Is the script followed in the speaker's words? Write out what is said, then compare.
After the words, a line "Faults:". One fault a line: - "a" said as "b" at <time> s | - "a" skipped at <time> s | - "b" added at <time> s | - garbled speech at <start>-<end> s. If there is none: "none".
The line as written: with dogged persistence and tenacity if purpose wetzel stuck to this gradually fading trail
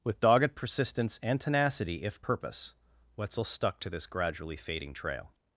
with dogged persistence and tenacity if purpose wetzel stuck to this gradually fading trail
Faults:
none